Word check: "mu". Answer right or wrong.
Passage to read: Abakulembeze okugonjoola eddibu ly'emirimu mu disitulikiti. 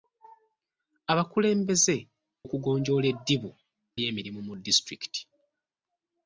right